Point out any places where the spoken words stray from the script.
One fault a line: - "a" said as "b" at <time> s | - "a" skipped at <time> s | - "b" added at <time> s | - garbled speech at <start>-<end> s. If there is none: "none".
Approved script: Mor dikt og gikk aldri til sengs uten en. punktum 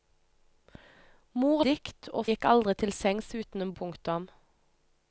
none